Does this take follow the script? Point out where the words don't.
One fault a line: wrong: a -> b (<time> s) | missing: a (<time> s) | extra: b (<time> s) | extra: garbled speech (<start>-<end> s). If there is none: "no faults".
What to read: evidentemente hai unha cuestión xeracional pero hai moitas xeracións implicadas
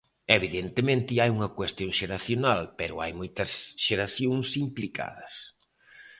no faults